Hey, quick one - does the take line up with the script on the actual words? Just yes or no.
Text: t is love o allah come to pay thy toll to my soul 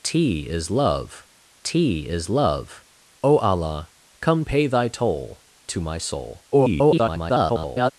no